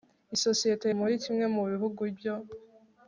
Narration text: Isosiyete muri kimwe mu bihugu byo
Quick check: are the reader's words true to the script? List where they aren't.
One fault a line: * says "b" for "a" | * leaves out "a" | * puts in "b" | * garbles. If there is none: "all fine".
all fine